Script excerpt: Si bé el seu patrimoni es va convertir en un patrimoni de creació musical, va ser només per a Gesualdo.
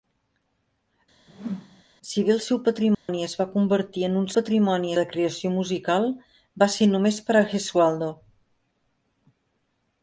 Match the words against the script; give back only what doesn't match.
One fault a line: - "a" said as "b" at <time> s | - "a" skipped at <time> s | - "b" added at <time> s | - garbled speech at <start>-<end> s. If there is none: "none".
none